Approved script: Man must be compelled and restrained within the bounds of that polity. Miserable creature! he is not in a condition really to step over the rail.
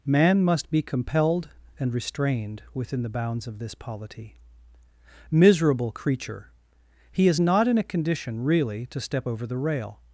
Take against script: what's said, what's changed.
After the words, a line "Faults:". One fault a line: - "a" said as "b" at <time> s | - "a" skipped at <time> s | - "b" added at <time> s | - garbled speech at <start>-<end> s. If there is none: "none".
Man must be compelled and restrained within the bounds of this polity. Miserable creature! he is not in a condition really to step over the rail.
Faults:
- "that" said as "this" at 3.6 s